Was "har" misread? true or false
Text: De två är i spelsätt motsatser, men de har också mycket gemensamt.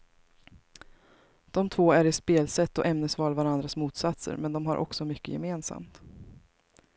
false